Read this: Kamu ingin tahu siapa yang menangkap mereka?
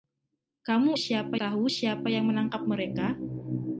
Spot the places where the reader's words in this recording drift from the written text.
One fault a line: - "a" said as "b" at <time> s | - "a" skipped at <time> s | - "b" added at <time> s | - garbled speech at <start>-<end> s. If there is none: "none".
- "ingin" said as "siapa" at 0.9 s